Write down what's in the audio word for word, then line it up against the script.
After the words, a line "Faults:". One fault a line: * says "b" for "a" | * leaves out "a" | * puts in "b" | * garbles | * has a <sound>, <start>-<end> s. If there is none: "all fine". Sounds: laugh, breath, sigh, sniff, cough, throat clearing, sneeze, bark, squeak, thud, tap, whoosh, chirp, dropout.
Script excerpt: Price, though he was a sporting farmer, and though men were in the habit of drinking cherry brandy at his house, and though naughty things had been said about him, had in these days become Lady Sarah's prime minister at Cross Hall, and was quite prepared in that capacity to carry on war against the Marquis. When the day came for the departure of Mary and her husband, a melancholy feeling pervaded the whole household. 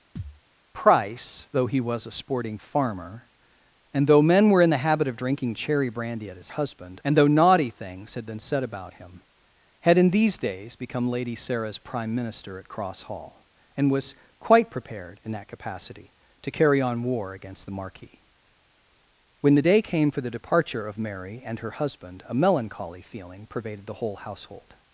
Price, though he was a sporting farmer, and though men were in the habit of drinking cherry brandy at his husband, and though naughty things had been said about him, had in these days become Lady Sarah's prime minister at Cross Hall, and was quite prepared in that capacity to carry on war against the Marquis. When the day came for the departure of Mary and her husband, a melancholy feeling pervaded the whole household.
Faults:
* has a thud, 0.2-0.4 s
* says "husband" for "house"